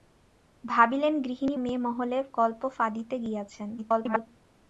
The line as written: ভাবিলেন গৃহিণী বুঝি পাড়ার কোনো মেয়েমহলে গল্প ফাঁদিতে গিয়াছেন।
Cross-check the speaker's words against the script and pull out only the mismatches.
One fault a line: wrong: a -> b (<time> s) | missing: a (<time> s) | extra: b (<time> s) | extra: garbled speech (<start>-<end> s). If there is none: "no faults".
missing: বুঝি পাড়ার কোনো (1.6 s)
extra: garbled speech (3.8-4.3 s)